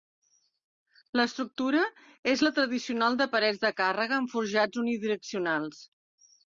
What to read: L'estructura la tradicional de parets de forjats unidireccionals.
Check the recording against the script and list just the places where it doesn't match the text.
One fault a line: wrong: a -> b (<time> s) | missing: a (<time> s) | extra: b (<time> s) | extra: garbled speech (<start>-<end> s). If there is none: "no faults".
extra: és (2.3 s)
extra: càrrega amb (3.8 s)